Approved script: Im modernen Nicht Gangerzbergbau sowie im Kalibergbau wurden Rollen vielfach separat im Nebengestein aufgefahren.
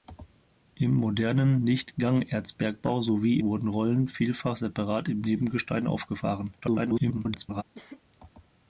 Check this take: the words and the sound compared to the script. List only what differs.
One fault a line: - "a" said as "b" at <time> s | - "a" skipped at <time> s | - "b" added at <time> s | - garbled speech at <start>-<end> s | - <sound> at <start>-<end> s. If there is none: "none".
- "im Kalibergbau" skipped at 3.4 s
- garbled speech at 6.6-7.6 s
- cough at 7.7-8.0 s